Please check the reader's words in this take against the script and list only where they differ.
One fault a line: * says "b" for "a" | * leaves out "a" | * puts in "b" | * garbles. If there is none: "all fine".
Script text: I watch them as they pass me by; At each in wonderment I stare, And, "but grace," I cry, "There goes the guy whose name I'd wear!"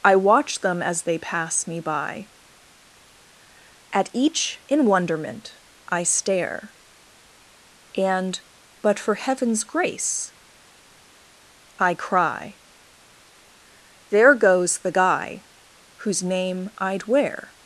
* puts in "for heaven's"